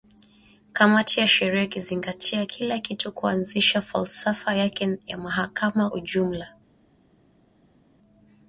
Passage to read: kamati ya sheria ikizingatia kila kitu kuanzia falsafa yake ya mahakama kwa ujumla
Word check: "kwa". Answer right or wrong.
wrong